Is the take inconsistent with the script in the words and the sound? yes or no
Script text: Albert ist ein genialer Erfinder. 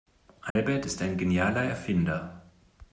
yes